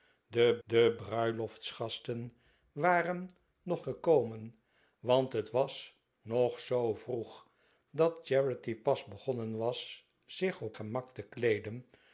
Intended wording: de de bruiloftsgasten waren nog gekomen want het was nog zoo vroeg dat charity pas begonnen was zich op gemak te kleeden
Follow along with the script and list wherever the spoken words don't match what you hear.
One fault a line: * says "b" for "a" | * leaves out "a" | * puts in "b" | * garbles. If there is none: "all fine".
all fine